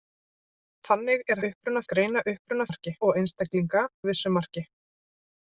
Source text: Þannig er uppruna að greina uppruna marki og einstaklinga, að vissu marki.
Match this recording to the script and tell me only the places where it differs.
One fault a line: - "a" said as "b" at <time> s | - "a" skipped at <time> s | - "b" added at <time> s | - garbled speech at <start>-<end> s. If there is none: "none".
none